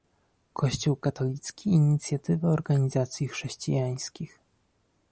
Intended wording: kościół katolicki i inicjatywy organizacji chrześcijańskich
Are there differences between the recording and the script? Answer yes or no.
no